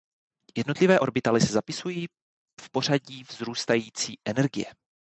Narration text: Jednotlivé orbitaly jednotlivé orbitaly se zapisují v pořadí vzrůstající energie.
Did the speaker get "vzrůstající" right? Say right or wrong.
right